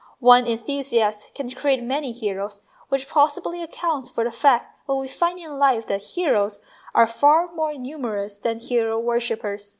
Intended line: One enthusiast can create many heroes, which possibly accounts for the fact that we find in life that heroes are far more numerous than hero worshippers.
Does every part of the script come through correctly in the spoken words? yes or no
yes